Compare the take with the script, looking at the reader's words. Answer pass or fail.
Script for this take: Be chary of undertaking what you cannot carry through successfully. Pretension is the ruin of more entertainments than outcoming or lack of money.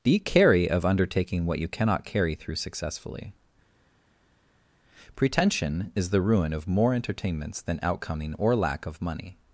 pass